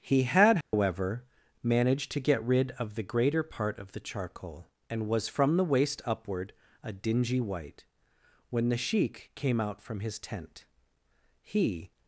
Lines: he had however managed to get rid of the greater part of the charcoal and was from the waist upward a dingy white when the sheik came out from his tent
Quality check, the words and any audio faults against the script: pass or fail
fail